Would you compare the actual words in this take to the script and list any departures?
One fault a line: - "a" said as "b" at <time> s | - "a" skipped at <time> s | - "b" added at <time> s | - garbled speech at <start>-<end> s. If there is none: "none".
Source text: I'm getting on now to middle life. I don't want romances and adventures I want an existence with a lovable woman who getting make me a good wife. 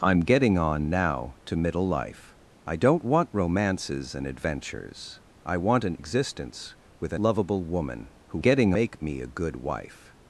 none